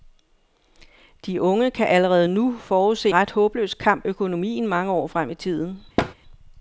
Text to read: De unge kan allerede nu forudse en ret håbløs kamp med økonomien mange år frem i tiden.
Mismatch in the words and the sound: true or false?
true